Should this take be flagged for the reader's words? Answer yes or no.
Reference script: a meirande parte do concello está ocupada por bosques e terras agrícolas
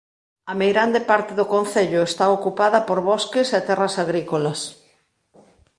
no